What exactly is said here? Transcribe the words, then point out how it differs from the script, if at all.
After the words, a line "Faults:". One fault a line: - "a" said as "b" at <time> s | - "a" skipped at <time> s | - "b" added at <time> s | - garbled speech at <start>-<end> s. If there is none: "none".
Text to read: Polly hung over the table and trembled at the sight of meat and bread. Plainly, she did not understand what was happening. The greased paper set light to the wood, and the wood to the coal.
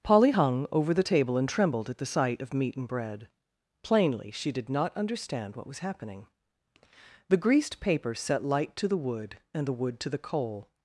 Polly hung over the table and trembled at the sight of meat and bread. Plainly, she did not understand what was happening. The greased paper set light to the wood, and the wood to the coal.
Faults:
none